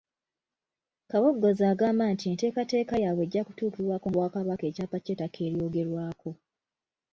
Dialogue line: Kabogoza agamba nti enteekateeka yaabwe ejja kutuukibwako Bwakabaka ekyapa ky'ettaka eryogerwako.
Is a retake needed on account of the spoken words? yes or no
no